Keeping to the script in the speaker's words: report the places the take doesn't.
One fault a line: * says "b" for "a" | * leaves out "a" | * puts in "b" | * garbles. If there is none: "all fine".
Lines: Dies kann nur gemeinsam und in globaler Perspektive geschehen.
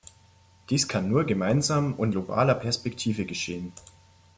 * leaves out "in"